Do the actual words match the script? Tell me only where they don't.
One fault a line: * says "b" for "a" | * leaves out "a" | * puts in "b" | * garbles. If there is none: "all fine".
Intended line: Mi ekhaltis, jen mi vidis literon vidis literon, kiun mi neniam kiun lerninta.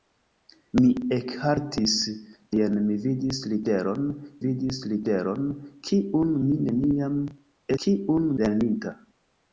all fine